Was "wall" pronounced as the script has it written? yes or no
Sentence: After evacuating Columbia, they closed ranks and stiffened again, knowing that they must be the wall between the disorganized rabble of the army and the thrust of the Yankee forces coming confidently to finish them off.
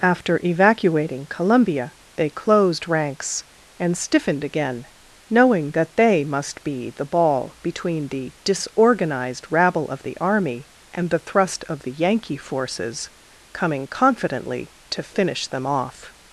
no